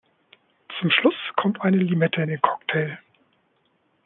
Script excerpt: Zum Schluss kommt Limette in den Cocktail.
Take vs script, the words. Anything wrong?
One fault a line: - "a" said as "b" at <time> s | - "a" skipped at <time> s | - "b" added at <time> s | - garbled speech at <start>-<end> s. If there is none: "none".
- "eine" added at 1.6 s